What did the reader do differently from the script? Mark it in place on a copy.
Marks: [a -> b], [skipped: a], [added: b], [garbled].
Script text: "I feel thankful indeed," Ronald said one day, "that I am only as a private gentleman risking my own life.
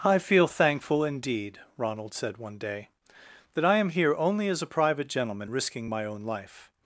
"I feel thankful indeed," Ronald said one day, "that I am [added: here] only as a private gentleman risking my own life.